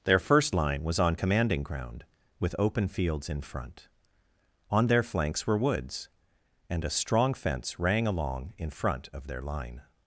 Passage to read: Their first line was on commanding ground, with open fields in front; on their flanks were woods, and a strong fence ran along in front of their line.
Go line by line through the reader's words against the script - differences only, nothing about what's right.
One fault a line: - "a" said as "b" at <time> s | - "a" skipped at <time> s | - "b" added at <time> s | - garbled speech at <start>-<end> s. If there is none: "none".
- "ran" said as "rang" at 7.8 s